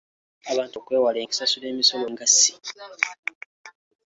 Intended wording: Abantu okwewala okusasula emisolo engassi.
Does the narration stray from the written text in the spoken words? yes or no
no